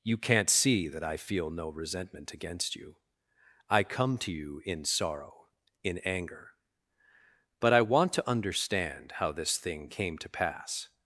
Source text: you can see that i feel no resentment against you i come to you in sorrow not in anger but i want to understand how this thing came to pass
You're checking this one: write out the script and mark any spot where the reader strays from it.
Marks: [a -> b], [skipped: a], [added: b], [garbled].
you [can -> can't] see that i feel no resentment against you i come to you in sorrow [skipped: not] in anger but i want to understand how this thing came to pass